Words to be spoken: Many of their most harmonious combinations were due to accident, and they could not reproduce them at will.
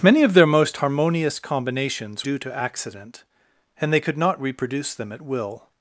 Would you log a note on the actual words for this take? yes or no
yes